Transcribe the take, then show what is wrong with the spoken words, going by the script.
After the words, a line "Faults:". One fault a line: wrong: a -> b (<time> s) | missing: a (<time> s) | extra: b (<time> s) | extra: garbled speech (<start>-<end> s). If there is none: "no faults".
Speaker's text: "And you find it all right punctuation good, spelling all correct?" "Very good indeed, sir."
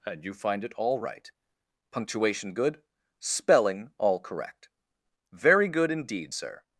"And you find it all right punctuation good, spelling all correct?" "Very good indeed, sir."
Faults:
no faults